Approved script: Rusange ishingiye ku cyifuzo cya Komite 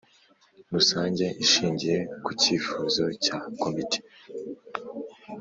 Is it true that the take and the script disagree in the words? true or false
false